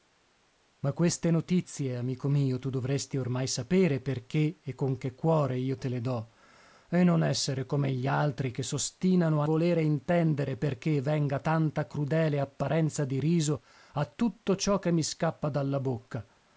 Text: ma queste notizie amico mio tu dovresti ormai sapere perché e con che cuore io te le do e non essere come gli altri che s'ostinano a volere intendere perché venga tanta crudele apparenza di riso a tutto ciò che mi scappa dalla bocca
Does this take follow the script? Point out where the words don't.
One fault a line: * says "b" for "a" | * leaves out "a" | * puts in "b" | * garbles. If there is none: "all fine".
all fine